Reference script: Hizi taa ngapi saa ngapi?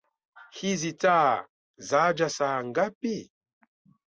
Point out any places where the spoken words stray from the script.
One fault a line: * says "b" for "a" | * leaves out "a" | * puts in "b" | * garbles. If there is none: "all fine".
* says "zaja" for "ngapi"